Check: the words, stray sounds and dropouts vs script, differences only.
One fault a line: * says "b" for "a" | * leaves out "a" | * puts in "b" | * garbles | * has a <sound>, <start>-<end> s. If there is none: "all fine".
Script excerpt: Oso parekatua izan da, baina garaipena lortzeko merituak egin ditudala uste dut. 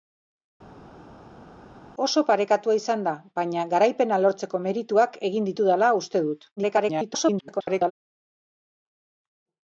* garbles